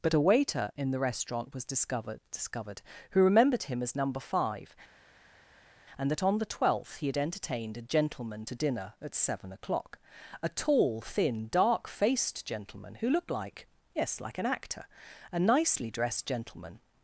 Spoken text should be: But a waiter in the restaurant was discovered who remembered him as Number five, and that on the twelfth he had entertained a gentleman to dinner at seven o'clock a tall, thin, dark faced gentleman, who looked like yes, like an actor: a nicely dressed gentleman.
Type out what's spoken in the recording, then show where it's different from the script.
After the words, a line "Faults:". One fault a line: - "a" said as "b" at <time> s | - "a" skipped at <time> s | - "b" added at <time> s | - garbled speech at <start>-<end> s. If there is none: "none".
But a waiter in the restaurant was discovered discovered who remembered him as Number five, and that on the twelfth he had entertained a gentleman to dinner at seven o'clock a tall, thin, dark faced gentleman, who looked like yes, like an actor: a nicely dressed gentleman.
Faults:
- "discovered" added at 2.3 s